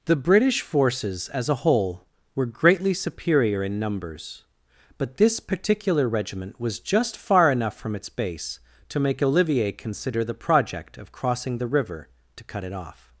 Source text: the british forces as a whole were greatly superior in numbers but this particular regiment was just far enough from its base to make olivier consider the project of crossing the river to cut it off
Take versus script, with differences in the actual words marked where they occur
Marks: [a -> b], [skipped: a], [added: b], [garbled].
the british forces as a whole were greatly superior in numbers but this particular regiment was just far enough from its base to make olivier consider the project of crossing the river to cut it off